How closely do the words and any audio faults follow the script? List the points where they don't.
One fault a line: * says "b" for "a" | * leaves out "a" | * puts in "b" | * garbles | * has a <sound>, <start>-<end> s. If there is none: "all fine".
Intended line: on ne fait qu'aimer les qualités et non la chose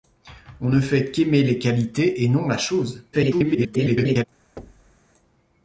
* garbles
* has a thud, 4.6-5.0 s